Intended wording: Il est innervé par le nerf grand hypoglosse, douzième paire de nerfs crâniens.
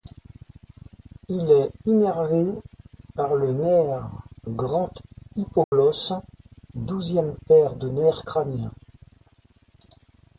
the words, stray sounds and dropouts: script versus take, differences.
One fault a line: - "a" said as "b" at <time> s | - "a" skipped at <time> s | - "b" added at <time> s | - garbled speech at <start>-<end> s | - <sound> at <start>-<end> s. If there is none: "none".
- dropout at 5.6-5.7 s